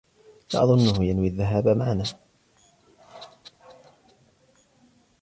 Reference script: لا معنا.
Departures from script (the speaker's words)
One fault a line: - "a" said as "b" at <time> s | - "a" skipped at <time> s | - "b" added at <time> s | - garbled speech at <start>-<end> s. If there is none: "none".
- "أظنه ينوي الذهاب" added at 0.6 s